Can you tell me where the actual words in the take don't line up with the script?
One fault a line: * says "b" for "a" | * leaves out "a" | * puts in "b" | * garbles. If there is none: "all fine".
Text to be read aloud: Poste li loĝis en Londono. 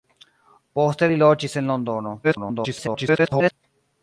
* garbles